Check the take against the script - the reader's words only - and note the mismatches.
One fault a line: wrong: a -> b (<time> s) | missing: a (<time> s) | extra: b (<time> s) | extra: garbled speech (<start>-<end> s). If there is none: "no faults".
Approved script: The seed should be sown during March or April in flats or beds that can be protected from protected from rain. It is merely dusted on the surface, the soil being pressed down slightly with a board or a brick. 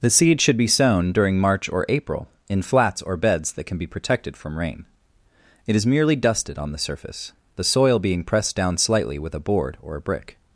missing: protected from (4.6 s)